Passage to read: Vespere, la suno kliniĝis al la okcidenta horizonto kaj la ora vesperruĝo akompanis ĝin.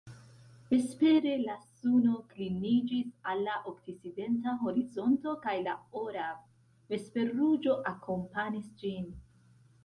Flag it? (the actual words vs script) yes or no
no